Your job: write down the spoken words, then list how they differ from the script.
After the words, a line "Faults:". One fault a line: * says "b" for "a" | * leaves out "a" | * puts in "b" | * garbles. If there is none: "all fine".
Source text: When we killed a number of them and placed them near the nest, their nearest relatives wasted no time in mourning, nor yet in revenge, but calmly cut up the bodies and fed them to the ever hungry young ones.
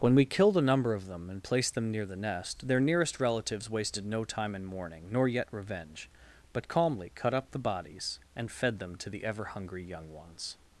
When we killed a number of them and placed them near the nest, their nearest relatives wasted no time in mourning, nor yet revenge, but calmly cut up the bodies and fed them to the ever hungry young ones.
Faults:
* leaves out "in"